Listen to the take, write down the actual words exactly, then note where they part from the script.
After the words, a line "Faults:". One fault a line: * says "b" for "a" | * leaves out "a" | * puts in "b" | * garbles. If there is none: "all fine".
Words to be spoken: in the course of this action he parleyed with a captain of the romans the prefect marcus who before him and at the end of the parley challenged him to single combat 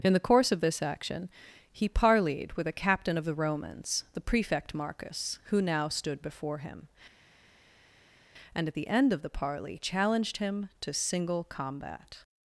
in the course of this action he parleyed with a captain of the romans the prefect marcus who now stood before him and at the end of the parley challenged him to single combat
Faults:
* puts in "now stood"